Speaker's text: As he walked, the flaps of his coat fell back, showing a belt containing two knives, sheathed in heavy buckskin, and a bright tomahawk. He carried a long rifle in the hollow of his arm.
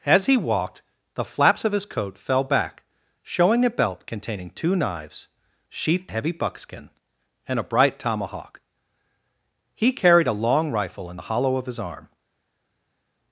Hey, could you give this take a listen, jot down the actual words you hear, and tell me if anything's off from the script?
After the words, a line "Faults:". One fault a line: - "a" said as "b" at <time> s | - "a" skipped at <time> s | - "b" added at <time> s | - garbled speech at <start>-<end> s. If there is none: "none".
As he walked, the flaps of his coat fell back, showing a belt containing two knives, sheathed heavy buckskin, and a bright tomahawk. He carried a long rifle in the hollow of his arm.
Faults:
- "in" skipped at 6.1 s